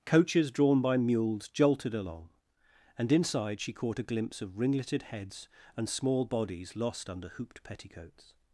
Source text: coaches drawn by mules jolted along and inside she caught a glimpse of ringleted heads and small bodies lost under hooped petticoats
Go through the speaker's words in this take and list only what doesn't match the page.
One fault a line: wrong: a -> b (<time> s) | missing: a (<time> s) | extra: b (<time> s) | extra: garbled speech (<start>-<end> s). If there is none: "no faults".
no faults